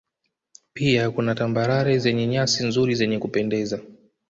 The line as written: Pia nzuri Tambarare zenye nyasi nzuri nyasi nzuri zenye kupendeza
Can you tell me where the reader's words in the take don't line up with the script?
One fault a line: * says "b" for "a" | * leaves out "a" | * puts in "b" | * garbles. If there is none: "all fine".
* says "kuna" for "nzuri"
* leaves out "nyasi nzuri"